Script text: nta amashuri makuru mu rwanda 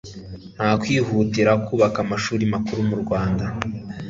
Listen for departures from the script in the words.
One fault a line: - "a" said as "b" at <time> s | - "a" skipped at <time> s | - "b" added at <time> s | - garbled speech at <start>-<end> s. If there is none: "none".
- "kwihutira kubaka" added at 0.8 s